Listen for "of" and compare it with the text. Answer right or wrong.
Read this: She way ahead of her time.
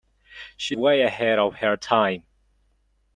right